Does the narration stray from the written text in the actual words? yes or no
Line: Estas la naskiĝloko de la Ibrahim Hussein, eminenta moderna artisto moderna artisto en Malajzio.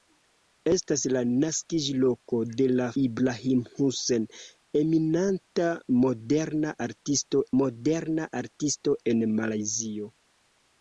no